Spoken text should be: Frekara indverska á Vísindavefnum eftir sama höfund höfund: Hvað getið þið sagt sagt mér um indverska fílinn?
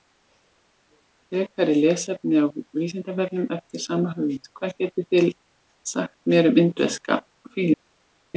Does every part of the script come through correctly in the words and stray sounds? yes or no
no